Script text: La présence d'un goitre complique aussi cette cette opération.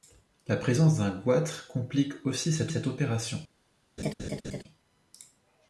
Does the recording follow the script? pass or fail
pass